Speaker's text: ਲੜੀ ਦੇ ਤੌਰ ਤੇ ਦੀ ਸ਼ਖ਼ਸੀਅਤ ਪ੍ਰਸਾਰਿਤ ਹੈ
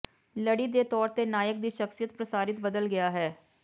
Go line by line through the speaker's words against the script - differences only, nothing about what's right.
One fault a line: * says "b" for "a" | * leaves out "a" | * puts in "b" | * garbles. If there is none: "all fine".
* puts in "ਨਾਇਕ"
* puts in "ਬਦਲ ਗਿਆ"